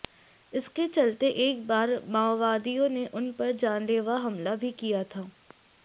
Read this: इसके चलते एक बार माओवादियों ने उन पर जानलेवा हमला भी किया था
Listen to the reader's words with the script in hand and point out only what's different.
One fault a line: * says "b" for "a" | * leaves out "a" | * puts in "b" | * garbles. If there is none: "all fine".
all fine